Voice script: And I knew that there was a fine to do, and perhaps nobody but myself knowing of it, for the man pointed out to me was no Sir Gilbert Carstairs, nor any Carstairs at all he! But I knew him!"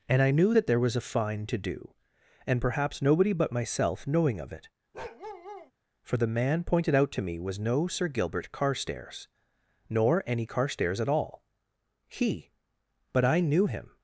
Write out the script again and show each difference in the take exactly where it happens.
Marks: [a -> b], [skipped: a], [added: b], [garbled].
And I knew that there was a fine to do, and perhaps nobody but myself knowing of it, for the man pointed out to me was no Sir Gilbert Carstairs, nor any Carstairs at all he! But I knew him!"